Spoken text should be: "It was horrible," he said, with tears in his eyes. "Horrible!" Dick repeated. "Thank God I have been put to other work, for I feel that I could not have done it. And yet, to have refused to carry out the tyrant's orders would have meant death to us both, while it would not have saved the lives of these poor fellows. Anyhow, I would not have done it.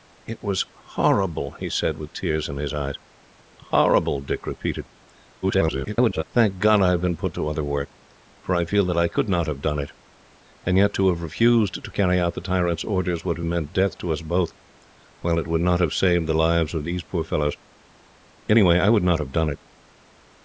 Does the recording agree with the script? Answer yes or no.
no